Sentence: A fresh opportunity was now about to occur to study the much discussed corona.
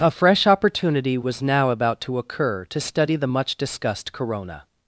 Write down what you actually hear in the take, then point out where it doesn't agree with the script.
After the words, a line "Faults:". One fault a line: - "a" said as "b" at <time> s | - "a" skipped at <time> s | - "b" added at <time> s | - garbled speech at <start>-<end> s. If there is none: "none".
A fresh opportunity was now about to occur to study the much discussed corona.
Faults:
none